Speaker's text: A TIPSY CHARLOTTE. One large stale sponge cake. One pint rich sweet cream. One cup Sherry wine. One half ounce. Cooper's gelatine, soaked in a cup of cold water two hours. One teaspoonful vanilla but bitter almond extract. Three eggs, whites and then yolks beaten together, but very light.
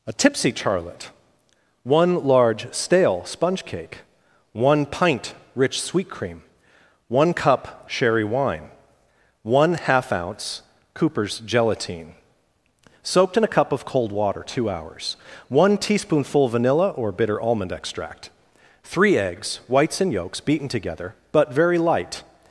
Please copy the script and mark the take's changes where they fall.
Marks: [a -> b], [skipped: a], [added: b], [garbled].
A TIPSY CHARLOTTE. One large stale sponge cake. One pint rich sweet cream. One cup Sherry wine. One half ounce. Cooper's gelatine, soaked in a cup of cold water two hours. One teaspoonful vanilla [but -> or] bitter almond extract. Three eggs, whites and [skipped: then] yolks beaten together, but very light.